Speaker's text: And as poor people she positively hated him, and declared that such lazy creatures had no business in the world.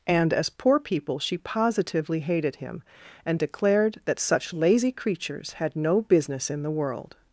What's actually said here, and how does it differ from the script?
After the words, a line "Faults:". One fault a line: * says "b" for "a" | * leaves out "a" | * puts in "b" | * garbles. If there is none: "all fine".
And as poor people she positively hated him, and declared that such lazy creatures had no business in the world.
Faults:
all fine